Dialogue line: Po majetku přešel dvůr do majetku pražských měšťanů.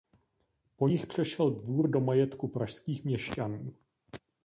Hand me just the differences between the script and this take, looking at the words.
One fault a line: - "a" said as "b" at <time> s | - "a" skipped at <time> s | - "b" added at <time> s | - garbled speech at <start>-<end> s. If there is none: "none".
- "majetku" said as "nich" at 0.8 s